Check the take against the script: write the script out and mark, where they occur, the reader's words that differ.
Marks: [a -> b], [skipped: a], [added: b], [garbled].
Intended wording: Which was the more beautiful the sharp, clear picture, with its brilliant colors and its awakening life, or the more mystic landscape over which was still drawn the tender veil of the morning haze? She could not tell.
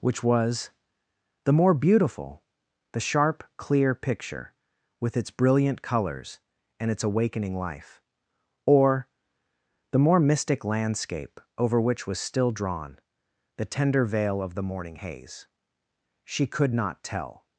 Which was the more beautiful the sharp, clear picture, with its brilliant colors and its awakening life, or the more mystic landscape over which was still drawn the tender veil of the morning haze? She could not tell.